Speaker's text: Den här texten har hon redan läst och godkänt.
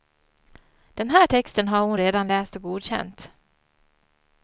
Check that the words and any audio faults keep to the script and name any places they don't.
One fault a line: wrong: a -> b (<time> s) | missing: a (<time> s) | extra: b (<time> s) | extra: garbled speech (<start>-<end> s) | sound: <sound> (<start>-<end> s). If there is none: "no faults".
no faults